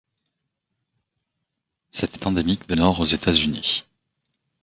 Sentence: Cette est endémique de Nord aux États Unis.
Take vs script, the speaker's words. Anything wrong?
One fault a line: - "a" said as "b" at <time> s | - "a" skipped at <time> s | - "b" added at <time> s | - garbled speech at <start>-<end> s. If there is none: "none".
none